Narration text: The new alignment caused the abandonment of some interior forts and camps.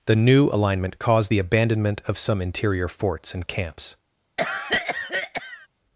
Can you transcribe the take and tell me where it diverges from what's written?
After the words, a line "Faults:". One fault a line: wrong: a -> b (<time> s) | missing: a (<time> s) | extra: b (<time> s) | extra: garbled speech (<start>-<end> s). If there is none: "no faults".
The new alignment caused the abandonment of some interior forts and camps.
Faults:
no faults